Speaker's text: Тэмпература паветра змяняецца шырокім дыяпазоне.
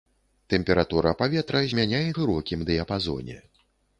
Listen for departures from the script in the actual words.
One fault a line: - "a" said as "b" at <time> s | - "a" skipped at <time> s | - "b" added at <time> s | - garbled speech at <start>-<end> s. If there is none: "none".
none